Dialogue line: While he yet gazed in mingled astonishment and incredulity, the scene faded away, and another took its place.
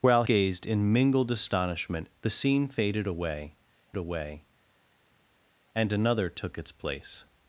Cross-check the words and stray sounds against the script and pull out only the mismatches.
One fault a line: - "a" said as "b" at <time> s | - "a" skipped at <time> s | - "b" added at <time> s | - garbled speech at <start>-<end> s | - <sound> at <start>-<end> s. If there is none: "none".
- "he yet" skipped at 0.2 s
- "and incredulity" skipped at 2.1 s
- "away" added at 3.9 s